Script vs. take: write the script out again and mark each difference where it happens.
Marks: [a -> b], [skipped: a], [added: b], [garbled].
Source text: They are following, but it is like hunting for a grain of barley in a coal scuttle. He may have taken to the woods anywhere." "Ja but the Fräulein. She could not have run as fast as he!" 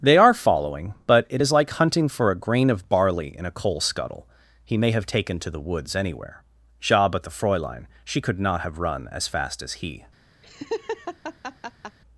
They are following, but it is like hunting for a grain of barley in a coal scuttle. He may have taken to the woods anywhere." "Ja but the Fräulein. She could not have run as fast as he!"